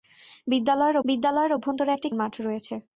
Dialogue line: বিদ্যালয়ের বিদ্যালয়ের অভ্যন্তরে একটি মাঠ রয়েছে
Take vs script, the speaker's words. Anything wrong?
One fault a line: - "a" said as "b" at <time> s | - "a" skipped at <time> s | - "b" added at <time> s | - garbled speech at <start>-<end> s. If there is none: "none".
none